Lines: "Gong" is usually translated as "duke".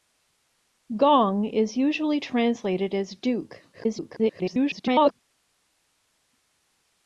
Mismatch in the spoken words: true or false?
true